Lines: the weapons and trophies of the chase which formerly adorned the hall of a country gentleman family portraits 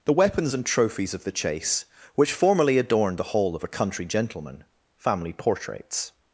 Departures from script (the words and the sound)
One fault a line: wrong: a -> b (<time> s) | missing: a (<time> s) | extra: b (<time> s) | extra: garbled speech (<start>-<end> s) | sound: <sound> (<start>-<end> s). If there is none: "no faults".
no faults